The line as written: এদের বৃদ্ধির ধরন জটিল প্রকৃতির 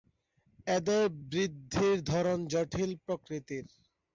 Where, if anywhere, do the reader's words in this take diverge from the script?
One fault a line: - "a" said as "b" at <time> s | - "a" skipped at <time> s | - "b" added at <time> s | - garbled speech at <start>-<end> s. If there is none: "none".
none